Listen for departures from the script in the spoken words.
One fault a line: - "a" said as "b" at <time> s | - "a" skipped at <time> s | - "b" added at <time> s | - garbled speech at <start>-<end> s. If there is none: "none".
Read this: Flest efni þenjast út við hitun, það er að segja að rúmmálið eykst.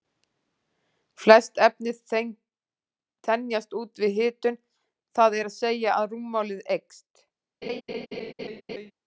none